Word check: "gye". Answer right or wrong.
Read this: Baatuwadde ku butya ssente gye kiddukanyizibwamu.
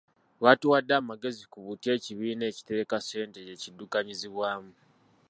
right